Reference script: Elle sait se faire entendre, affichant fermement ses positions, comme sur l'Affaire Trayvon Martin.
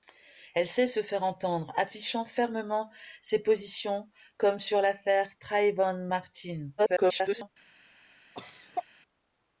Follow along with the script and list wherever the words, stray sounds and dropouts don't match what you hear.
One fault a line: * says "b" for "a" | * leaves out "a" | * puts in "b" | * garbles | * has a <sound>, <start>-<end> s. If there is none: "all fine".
* garbles
* has a cough, 8.3-8.8 s